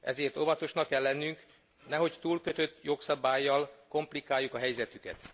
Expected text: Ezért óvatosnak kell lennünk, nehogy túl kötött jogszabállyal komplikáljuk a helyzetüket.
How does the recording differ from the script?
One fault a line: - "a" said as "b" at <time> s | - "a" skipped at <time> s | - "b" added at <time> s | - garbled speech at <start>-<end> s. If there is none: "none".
none